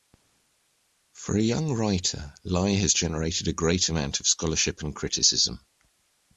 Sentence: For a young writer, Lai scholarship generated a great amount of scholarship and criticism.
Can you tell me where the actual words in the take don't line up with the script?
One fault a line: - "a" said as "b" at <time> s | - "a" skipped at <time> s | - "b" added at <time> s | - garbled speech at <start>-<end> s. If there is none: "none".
- "scholarship" said as "has" at 2.7 s